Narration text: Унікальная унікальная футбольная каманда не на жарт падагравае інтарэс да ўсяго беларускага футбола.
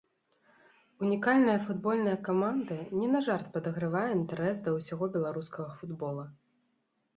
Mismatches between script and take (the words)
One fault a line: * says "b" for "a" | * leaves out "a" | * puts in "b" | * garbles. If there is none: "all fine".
* leaves out "унікальная"